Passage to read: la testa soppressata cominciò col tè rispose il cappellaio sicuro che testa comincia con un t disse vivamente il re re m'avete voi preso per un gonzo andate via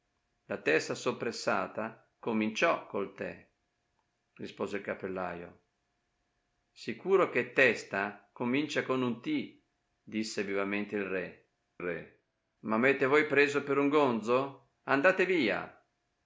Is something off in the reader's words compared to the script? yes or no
no